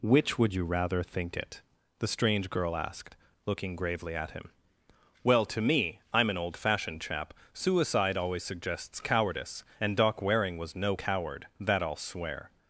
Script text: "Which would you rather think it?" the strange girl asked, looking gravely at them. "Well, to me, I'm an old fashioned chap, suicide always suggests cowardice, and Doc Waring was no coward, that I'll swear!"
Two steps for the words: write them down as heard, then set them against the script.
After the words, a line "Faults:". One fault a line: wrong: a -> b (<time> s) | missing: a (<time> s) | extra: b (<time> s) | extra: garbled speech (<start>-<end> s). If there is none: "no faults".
"Which would you rather think it?" the strange girl asked, looking gravely at him. "Well, to me, I'm an old fashioned chap, suicide always suggests cowardice, and Doc Waring was no coward, that I'll swear!"
Faults:
wrong: them -> him (4.3 s)